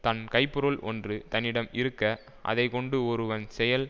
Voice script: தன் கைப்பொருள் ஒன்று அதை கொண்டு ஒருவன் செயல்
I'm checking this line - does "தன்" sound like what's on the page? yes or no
yes